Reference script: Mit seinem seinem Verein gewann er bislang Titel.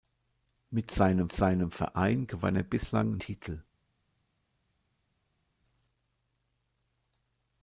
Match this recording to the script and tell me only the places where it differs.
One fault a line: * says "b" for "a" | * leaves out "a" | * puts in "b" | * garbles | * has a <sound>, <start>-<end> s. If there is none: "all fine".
all fine